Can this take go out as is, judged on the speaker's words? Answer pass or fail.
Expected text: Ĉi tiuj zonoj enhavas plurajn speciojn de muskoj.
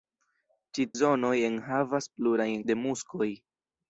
fail